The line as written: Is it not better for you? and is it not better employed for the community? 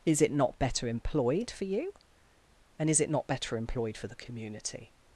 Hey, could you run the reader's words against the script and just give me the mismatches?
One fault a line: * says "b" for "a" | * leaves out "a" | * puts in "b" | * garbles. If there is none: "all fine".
* puts in "employed"